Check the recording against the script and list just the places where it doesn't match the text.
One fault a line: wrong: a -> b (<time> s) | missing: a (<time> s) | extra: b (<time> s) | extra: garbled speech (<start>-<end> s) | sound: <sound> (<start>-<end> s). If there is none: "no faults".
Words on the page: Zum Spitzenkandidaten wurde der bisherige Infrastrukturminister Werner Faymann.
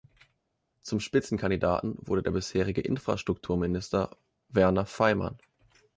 no faults